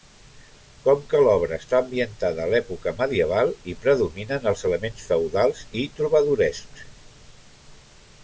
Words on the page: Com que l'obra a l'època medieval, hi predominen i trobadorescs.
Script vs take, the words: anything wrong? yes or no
yes